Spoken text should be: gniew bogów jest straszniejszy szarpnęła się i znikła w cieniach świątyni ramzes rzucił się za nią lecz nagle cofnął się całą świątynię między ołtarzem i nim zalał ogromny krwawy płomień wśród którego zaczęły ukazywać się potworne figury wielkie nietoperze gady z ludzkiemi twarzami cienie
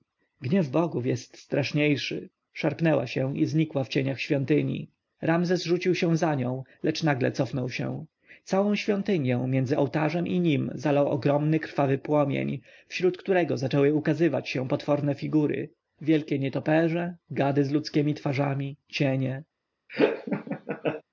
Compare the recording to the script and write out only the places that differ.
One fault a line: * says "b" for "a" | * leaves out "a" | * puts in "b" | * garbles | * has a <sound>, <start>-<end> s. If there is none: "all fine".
* has a laugh, 19.9-21.0 s